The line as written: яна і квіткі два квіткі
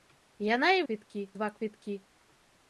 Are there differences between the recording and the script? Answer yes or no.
no